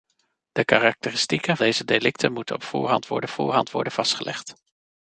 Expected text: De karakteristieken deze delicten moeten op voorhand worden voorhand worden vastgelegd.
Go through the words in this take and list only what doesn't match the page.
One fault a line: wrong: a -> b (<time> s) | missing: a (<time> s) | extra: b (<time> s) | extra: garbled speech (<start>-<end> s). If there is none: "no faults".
no faults